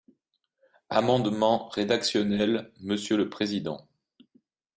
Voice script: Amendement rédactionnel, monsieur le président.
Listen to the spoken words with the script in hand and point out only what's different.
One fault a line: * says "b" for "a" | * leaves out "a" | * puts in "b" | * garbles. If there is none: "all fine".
all fine